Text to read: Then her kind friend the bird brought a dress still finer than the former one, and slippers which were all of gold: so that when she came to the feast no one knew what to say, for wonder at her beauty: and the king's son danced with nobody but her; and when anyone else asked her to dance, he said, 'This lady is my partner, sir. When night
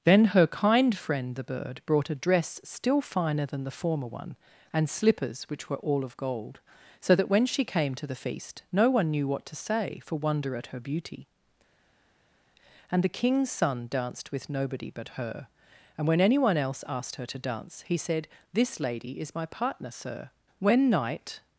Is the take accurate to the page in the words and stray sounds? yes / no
yes